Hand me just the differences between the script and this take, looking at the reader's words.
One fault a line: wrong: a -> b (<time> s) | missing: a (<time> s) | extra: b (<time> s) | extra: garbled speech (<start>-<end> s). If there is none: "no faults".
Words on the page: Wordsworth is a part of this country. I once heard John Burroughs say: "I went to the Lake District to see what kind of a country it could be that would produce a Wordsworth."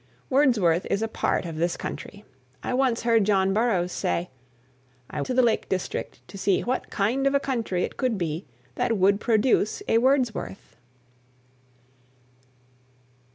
missing: went (5.2 s)